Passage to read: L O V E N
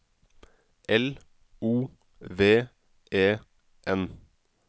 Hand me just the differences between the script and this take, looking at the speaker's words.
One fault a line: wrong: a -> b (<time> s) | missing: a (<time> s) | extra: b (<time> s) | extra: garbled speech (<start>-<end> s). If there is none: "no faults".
no faults